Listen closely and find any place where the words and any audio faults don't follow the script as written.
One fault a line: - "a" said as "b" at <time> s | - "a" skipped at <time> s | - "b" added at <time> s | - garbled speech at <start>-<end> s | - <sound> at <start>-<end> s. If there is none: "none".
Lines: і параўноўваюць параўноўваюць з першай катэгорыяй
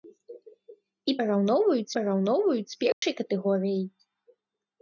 - dropout at 2.9-3.0 s